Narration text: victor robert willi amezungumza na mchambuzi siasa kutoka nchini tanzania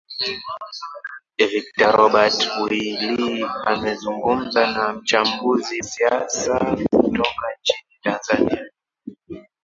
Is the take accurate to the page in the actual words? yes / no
yes